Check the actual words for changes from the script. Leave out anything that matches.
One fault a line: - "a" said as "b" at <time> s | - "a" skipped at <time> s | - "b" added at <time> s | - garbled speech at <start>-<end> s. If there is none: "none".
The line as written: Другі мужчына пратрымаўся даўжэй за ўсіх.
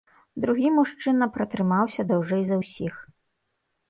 none